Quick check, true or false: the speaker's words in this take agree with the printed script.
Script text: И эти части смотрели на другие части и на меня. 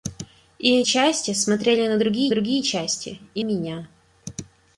false